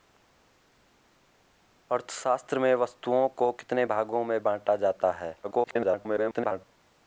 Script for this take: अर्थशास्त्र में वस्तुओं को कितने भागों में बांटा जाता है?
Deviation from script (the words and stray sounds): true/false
true